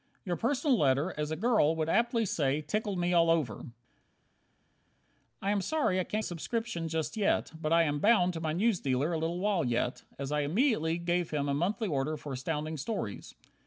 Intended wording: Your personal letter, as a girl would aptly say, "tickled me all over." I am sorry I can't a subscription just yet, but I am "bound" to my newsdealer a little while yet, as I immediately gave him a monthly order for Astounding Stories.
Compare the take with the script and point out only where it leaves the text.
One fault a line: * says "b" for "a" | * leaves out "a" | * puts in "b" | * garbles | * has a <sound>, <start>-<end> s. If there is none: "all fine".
all fine